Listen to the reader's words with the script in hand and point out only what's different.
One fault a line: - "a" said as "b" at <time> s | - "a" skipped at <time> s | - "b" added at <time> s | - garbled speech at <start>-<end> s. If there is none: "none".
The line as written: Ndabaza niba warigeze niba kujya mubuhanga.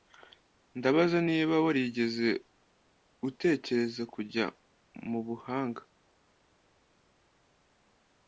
- "niba" said as "utekereza" at 3.3 s